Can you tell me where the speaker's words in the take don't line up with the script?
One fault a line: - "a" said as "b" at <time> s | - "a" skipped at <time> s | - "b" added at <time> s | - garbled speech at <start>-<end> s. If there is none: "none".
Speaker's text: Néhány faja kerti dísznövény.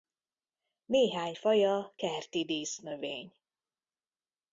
none